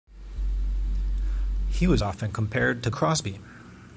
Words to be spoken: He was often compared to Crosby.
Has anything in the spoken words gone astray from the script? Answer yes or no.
no